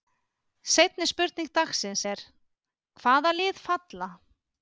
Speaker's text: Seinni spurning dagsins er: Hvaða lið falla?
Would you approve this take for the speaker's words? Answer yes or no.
yes